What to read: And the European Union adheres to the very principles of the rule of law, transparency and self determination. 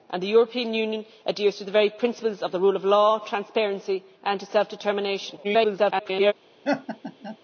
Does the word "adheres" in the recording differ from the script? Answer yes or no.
no